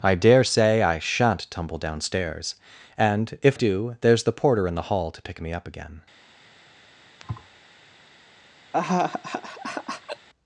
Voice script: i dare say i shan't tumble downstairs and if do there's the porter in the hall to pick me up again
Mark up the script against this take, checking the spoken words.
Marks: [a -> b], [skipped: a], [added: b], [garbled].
i dare say i shan't tumble downstairs and if do there's the porter in the hall to pick me up again